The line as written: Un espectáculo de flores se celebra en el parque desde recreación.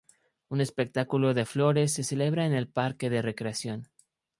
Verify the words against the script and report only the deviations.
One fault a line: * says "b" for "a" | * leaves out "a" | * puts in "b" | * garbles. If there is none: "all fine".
* says "de" for "desde"